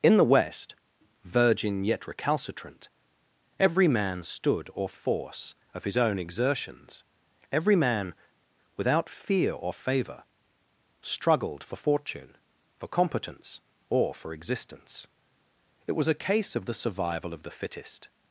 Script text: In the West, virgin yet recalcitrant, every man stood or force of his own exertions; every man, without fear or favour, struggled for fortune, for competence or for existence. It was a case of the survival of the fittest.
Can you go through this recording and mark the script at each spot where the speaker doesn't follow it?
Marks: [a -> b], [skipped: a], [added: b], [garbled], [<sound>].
In the West, virgin yet recalcitrant, every man stood or force of his own exertions; every man, without fear or favour, struggled for fortune, for competence or for existence. It was a case of the survival of the fittest.